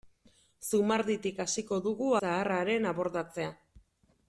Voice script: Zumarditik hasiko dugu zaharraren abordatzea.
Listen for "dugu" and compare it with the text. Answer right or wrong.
right